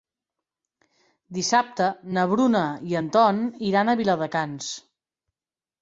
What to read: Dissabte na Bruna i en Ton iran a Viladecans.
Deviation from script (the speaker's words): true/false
false